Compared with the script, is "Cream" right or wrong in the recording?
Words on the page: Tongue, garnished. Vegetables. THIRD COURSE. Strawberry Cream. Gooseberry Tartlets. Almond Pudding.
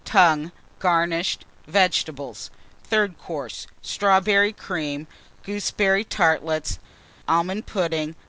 right